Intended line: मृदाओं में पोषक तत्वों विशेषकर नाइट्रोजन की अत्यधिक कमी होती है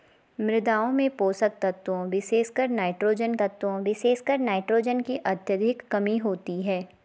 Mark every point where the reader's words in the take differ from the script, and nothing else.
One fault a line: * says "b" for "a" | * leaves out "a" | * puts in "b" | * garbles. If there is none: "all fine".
* puts in "तत्वों विशेषकर नाइट्रोजन"